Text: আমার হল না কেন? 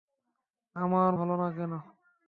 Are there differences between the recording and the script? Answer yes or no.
no